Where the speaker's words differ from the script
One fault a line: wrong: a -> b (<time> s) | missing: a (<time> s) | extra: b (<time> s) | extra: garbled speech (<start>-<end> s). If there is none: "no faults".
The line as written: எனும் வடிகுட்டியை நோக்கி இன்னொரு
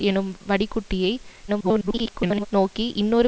extra: garbled speech (1.5-2.5 s)